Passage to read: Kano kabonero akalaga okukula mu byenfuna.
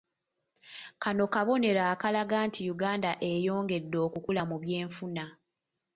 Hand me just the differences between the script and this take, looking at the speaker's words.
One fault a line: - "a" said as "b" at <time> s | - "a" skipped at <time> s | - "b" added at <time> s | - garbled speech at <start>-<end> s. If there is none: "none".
- "nti Uganda eyongedde" added at 2.5 s